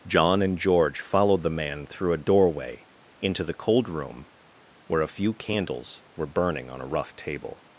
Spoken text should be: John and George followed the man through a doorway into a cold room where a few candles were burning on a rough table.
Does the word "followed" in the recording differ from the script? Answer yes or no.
no